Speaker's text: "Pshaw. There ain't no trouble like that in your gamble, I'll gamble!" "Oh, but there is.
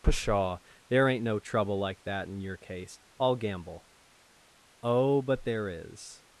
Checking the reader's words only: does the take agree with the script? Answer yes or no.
no